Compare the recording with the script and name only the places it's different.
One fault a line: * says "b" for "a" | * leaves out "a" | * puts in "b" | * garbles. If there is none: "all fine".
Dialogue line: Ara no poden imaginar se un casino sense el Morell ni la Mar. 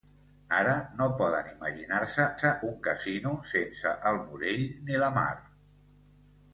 * puts in "se"